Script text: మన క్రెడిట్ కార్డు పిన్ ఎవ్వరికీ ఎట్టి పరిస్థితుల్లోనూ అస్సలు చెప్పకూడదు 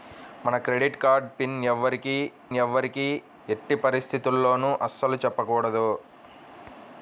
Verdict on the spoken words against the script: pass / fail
fail